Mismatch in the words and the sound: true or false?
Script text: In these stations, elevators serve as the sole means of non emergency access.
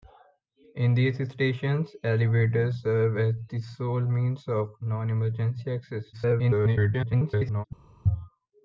true